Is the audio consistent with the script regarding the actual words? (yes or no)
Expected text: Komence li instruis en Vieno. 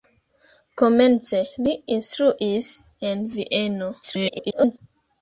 no